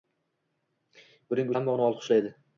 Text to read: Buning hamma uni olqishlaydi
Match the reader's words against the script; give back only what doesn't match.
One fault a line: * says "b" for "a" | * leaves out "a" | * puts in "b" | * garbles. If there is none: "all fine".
all fine